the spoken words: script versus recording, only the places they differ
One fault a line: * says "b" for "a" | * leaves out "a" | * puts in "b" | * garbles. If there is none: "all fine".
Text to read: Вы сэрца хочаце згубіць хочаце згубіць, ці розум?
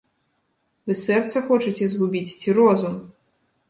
* leaves out "хочаце згубіць"